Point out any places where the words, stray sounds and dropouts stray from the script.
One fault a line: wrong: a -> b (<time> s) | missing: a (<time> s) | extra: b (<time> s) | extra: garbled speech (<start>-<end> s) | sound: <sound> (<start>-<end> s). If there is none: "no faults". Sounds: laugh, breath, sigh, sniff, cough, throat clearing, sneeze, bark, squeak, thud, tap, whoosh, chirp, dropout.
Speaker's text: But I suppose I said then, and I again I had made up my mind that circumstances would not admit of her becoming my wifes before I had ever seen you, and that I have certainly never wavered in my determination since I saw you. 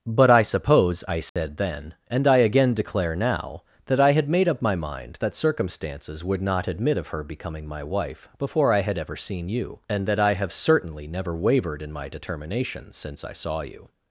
sound: dropout (1.3-1.4 s)
extra: declare now that (2.7 s)
wrong: wifes -> wife (7.8 s)